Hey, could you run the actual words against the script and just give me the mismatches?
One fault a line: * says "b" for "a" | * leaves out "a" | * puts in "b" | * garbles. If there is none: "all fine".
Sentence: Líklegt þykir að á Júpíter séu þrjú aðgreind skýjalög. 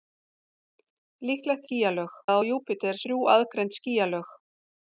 * says "skýjalög" for "þykir"
* leaves out "séu"